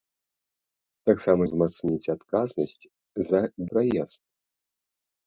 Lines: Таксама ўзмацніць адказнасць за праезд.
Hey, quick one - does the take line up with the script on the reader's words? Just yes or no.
yes